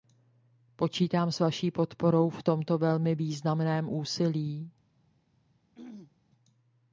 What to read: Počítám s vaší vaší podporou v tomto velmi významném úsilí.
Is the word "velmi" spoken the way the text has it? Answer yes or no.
yes